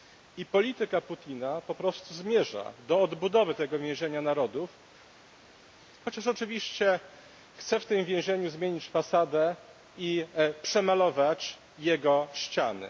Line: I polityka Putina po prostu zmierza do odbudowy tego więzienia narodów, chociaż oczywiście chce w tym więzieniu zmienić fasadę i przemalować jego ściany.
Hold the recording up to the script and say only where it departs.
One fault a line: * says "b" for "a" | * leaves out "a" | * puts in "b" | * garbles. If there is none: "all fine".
all fine